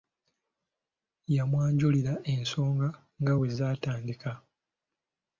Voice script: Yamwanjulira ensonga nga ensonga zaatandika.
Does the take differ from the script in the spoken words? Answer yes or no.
yes